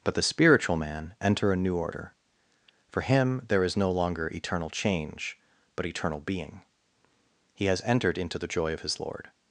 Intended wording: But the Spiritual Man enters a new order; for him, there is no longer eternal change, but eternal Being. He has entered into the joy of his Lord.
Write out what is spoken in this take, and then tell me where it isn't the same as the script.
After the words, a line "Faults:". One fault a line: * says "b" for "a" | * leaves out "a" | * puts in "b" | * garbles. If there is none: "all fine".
But the Spiritual Man enter a new order; for him, there is no longer eternal change, but eternal Being. He has entered into the joy of his Lord.
Faults:
* says "enter" for "enters"